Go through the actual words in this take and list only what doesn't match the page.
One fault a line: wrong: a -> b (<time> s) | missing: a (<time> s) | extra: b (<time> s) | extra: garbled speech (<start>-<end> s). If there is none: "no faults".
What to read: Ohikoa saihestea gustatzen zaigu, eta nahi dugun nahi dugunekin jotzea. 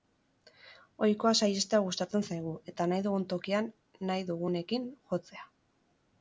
extra: tokian (3.4 s)